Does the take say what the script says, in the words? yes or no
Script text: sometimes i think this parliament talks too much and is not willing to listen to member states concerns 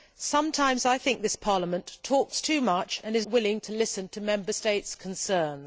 no